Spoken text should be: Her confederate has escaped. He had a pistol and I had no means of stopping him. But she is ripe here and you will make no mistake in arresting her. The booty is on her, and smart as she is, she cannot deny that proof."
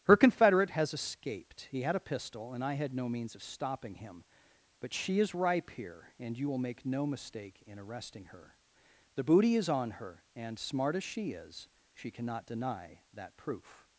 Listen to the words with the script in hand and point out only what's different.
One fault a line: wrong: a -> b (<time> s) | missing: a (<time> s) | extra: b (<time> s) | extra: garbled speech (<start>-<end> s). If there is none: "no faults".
no faults